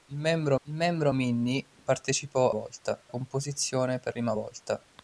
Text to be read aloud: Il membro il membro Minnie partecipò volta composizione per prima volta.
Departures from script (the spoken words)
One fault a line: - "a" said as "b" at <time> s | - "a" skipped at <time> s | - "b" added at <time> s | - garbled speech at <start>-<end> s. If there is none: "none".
none